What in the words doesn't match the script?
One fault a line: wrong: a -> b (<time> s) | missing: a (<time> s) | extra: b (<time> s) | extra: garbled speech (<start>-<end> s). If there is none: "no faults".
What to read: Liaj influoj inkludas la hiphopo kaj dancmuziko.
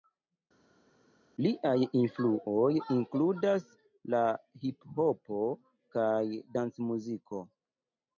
no faults